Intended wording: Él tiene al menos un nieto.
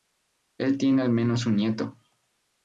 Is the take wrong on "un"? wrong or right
right